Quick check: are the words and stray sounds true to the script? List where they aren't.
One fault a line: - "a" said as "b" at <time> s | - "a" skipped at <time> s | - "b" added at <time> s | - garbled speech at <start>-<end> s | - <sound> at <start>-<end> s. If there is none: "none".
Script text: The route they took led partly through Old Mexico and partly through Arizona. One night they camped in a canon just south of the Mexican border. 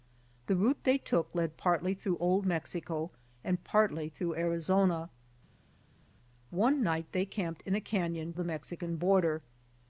- "just south of" skipped at 8.3 s